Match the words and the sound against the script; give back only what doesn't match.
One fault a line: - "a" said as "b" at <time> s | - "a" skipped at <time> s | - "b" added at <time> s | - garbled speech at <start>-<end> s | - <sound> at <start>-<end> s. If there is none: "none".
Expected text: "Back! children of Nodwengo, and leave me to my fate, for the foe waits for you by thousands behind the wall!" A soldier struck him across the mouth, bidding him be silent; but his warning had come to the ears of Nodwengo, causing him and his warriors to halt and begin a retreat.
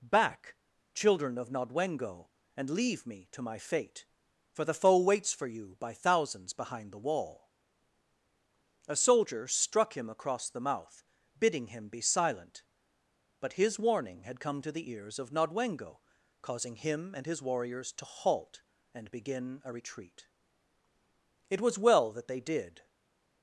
- "It was well that they did" added at 21.5 s